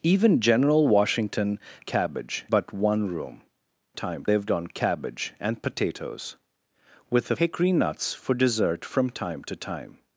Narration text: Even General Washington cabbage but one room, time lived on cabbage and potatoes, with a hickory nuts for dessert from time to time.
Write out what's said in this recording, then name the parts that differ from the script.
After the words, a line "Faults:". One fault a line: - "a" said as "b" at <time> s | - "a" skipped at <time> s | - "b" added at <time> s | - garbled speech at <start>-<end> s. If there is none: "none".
Even General Washington cabbage but one room, time lived on cabbage and potatoes, with a hickory nuts for dessert from time to time.
Faults:
none